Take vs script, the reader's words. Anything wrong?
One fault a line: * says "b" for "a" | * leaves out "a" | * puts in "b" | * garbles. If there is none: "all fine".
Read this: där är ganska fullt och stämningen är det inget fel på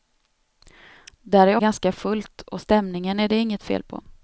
all fine